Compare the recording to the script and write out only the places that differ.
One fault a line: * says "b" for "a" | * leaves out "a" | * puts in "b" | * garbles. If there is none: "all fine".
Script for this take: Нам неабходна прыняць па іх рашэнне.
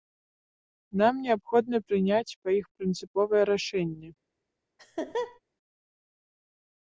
* puts in "прынцыповае"